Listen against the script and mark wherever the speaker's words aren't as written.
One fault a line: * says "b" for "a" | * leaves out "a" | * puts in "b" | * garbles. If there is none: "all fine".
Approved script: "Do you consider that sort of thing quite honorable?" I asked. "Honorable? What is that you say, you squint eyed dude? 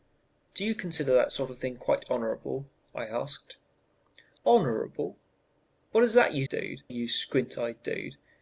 * says "dude" for "say"